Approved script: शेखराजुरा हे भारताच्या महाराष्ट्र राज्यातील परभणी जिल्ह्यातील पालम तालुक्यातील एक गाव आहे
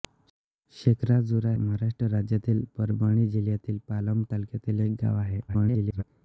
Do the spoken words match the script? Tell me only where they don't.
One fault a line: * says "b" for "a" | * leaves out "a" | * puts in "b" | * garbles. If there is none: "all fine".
* leaves out "हे भारताच्या"
* garbles